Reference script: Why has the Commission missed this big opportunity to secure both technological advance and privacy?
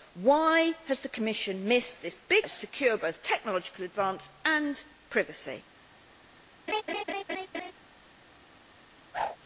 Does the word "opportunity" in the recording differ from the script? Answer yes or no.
yes